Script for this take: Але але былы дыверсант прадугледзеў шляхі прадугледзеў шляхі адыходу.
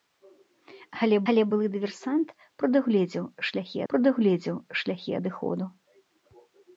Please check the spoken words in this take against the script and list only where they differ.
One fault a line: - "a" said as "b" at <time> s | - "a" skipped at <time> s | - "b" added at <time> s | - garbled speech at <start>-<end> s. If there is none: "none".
none